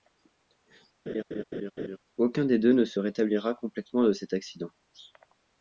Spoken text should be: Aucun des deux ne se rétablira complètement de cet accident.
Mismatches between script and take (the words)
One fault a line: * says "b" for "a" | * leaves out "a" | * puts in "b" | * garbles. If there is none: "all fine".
all fine